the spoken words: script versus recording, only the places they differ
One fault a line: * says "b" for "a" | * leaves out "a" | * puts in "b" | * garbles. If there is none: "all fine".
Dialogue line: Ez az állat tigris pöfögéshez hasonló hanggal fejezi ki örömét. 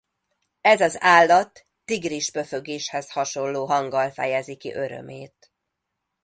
all fine